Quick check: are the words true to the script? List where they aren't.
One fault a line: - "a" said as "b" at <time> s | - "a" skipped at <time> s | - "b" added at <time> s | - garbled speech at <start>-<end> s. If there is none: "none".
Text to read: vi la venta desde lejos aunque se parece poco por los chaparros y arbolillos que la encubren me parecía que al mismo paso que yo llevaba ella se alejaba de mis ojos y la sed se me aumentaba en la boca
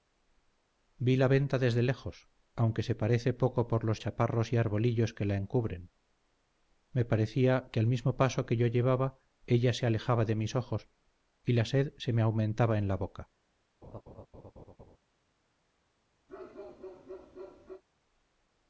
none